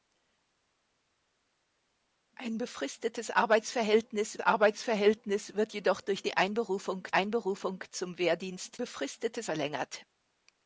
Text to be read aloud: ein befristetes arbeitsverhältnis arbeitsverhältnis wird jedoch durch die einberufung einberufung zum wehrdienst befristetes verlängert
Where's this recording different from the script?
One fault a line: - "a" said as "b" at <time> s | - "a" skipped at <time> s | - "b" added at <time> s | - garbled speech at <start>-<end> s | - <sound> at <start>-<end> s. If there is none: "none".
none